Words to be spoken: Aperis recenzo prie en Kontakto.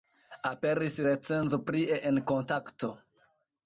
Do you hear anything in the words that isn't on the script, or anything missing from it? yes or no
no